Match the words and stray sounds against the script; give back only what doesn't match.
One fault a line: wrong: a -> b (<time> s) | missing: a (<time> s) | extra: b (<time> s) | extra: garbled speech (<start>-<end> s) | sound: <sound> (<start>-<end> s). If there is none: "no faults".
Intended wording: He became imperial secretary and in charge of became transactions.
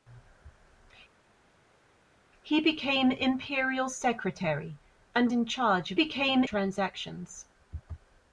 no faults